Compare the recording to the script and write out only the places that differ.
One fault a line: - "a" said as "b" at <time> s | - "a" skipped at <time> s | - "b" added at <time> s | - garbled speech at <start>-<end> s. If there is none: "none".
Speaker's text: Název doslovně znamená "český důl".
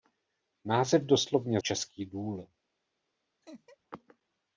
- "znamená" skipped at 1.6 s